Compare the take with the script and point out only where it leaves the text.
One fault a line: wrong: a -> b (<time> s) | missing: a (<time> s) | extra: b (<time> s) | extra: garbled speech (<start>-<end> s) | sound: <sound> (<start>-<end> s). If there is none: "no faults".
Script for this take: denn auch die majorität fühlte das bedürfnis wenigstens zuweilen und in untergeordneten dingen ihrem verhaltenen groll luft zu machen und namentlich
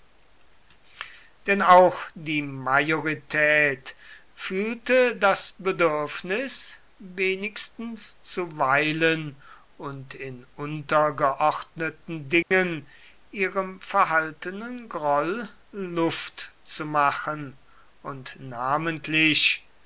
sound: dropout (12.4-12.5 s)